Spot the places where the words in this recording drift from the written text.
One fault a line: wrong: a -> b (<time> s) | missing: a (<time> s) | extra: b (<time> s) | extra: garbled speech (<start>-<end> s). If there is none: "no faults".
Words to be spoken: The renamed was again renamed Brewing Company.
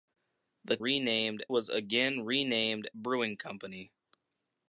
no faults